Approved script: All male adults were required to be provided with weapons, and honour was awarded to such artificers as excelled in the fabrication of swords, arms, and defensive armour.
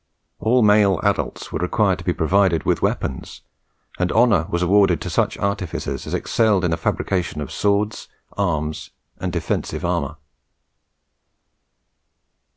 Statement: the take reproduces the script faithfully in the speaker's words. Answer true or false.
true